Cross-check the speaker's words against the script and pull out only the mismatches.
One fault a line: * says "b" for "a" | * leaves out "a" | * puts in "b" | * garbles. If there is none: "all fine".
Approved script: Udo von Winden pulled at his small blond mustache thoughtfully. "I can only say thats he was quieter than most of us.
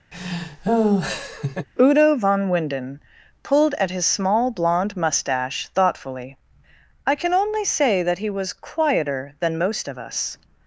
* says "that" for "thats"